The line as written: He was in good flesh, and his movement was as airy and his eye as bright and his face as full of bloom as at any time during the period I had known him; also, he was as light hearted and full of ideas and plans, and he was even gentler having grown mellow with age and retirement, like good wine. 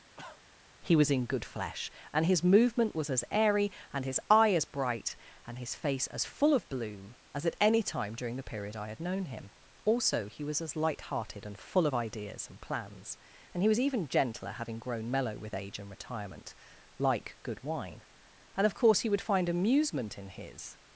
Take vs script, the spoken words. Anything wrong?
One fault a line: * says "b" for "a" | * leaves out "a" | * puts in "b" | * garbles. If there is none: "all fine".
* puts in "And of course he would find amusement in his"